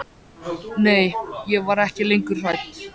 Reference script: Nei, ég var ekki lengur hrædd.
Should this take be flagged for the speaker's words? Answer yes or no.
no